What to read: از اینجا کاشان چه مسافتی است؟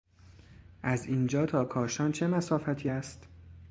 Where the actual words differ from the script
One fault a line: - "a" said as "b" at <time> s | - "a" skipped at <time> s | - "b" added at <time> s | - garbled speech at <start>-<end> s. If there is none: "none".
- "تا" added at 1.4 s